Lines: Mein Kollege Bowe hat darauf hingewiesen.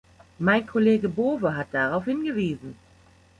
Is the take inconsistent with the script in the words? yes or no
no